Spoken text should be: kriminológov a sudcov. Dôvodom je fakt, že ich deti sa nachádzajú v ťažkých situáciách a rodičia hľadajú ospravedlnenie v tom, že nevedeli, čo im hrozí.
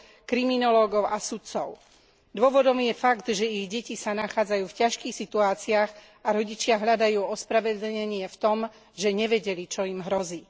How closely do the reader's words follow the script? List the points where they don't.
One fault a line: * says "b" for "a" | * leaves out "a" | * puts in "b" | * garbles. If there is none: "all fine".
all fine